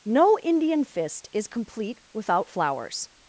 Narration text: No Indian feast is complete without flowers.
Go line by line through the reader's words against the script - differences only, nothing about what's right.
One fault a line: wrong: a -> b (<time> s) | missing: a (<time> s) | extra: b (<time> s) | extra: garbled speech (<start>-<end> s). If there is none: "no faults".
wrong: feast -> fist (0.8 s)